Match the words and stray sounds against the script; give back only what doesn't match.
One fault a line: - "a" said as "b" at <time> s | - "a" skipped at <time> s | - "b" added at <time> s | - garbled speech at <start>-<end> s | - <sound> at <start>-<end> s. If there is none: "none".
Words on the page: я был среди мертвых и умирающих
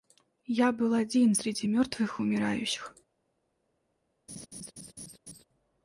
- "один" added at 0.9 s
- laugh at 4.3-5.4 s